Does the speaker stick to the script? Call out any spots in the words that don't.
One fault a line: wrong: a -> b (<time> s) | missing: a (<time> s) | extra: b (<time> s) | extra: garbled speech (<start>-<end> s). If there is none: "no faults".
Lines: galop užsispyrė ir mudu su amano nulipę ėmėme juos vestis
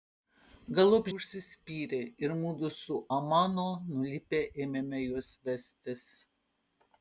no faults